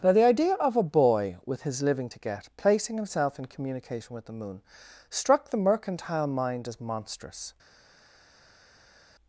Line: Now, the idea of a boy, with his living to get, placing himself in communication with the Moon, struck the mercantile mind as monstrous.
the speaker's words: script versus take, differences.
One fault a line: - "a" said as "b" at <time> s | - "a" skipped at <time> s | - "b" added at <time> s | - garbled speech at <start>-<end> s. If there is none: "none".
none